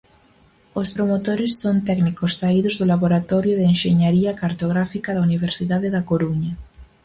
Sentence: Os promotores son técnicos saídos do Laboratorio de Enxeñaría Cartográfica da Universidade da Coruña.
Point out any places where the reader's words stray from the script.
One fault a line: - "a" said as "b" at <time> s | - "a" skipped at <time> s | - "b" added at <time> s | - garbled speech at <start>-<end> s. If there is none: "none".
none